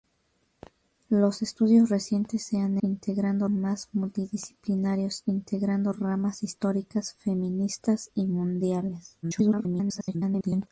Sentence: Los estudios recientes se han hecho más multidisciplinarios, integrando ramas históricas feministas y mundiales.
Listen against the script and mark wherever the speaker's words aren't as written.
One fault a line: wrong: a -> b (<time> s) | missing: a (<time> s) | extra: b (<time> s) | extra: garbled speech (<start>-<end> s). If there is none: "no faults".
wrong: hecho -> integrando (2.8 s)
extra: garbled speech (9.2-10.7 s)